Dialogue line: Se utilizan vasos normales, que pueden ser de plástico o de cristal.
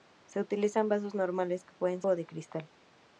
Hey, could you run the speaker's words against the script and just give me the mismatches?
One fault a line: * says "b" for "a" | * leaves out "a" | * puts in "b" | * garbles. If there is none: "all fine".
* leaves out "ser de plástico"